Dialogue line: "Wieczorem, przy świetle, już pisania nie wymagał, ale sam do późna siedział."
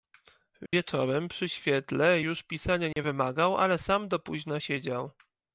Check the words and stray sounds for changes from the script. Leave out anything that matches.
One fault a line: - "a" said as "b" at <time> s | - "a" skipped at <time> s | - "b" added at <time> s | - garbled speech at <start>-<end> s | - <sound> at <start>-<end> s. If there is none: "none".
- dropout at 0.7-0.7 s
- dropout at 2.9-3.0 s